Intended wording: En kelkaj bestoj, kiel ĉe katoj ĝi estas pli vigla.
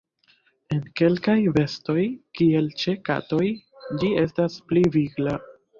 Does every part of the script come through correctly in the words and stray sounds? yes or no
yes